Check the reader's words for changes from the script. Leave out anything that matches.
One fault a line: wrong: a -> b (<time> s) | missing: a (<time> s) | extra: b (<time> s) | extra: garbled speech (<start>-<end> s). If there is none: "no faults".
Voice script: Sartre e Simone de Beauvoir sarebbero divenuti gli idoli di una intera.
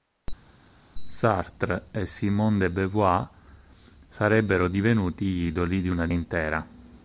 no faults